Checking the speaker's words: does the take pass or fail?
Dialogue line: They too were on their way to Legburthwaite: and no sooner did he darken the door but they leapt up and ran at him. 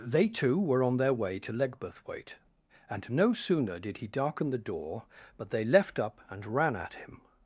fail